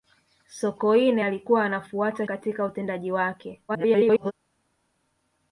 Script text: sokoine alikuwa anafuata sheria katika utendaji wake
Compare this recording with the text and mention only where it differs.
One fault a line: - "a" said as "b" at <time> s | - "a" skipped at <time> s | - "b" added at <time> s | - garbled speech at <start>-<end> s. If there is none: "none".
- "sheria" skipped at 2.3 s
- garbled speech at 3.7-4.3 s